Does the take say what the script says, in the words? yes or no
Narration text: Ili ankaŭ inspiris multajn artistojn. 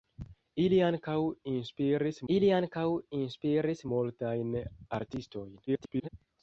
no